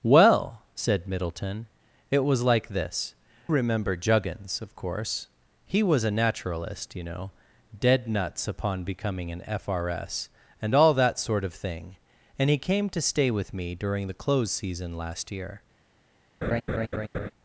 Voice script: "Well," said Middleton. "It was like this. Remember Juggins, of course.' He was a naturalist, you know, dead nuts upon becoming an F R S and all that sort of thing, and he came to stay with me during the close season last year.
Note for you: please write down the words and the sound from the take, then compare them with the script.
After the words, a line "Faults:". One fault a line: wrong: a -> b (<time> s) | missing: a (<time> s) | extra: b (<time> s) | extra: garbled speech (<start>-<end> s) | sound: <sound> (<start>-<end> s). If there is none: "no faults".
"Well," said Middleton. "It was like this. Remember Juggins, of course.' He was a naturalist, you know, dead nuts upon becoming an F R S and all that sort of thing, and he came to stay with me during the close season last year.
Faults:
sound: laugh (16.4-17.3 s)